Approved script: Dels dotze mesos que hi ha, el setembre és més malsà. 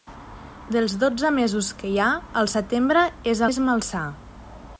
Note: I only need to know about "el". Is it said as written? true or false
true